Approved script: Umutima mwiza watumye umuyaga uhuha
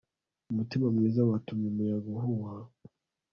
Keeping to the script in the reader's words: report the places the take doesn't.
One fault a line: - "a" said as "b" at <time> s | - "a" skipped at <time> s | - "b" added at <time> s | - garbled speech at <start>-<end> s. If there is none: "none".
none